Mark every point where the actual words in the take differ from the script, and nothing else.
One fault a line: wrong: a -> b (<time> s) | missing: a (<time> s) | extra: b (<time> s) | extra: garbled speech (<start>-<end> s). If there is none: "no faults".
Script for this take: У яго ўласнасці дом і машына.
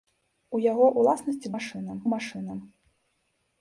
wrong: дом -> машына (1.5 s)